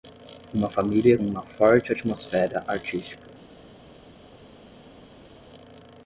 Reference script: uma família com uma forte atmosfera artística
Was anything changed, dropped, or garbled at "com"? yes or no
yes